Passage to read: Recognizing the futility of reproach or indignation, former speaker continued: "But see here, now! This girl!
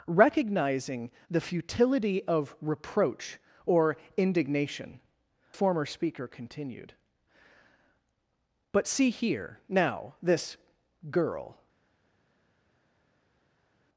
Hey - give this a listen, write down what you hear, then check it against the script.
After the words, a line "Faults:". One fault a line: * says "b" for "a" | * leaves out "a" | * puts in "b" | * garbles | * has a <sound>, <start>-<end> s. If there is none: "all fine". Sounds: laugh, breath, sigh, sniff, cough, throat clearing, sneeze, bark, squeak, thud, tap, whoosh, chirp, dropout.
Recognizing the futility of reproach or indignation, former speaker continued: "But see here, now! This girl!
Faults:
all fine